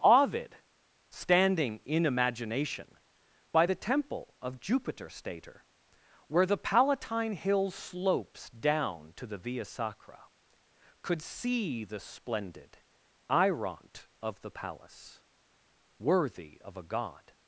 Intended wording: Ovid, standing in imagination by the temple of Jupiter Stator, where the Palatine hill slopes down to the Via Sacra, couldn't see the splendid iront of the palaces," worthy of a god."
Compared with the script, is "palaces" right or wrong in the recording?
wrong